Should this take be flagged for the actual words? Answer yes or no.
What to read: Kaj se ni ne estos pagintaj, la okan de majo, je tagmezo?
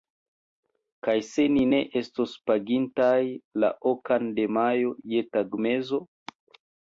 no